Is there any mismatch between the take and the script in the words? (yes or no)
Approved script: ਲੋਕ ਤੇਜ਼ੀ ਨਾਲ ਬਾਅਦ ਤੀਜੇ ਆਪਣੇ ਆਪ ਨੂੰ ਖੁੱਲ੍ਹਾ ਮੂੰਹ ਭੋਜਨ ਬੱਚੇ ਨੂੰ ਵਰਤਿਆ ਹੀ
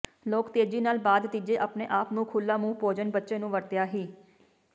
no